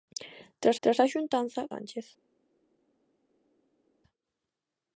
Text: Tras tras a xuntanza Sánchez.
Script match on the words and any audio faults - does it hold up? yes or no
yes